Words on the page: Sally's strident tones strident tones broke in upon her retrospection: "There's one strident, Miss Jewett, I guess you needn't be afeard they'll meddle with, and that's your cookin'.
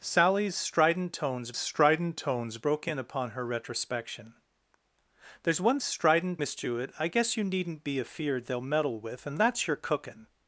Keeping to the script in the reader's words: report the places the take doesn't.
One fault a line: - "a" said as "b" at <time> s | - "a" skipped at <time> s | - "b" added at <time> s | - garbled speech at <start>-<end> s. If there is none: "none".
none